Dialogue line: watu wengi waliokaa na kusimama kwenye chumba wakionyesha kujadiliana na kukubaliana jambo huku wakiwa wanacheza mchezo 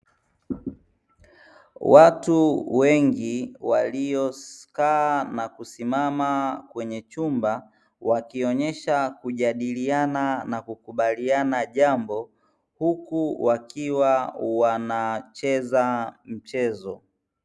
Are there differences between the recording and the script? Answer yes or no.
no